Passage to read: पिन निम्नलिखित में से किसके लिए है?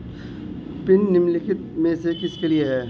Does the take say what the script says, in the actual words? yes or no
yes